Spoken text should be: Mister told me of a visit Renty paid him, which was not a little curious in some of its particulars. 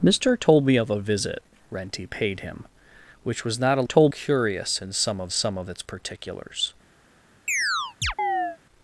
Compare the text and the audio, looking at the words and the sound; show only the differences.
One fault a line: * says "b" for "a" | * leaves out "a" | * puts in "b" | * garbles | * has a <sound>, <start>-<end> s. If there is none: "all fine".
* says "told" for "little"
* puts in "some of"
* has a chirp, 7.5-8.6 s